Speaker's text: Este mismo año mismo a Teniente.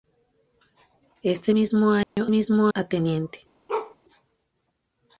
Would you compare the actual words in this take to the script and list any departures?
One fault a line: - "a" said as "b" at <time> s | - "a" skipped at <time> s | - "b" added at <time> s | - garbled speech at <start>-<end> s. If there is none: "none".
none